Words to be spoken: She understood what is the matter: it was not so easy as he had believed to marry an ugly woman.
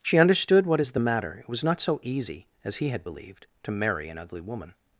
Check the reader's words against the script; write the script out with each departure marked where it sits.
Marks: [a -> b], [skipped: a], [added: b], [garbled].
She understood what is the matter: it was not so easy as he had believed to marry an ugly woman.